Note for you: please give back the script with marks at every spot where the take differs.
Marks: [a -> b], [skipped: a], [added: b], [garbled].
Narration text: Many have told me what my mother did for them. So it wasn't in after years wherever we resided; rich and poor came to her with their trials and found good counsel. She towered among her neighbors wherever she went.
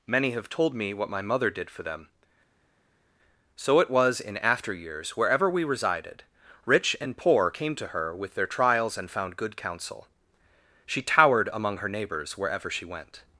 Many have told me what my mother did for them. So it [wasn't -> was] in after years wherever we resided; rich and poor came to her with their trials and found good counsel. She towered among her neighbors wherever she went.